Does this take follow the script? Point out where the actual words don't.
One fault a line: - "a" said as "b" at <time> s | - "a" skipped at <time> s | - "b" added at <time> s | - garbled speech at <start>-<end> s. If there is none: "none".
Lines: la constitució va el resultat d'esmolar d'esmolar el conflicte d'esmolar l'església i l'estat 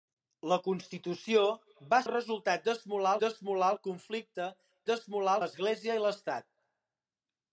none